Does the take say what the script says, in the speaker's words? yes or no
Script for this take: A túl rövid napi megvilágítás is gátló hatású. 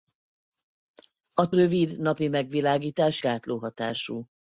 no